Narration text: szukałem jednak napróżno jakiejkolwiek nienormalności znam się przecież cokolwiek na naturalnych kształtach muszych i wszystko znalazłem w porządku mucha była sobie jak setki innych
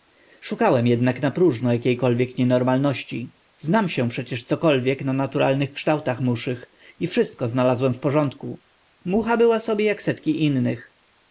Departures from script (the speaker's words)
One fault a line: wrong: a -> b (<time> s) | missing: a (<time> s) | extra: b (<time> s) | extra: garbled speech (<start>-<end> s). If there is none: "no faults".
no faults